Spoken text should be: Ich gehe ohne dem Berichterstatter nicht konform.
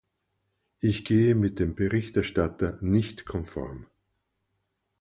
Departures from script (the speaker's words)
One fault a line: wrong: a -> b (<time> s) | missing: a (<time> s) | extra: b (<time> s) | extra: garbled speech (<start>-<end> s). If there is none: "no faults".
wrong: ohne -> mit (1.3 s)